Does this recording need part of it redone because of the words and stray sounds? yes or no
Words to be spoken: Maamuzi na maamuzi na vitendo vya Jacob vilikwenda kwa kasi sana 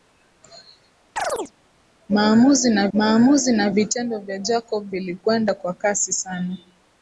yes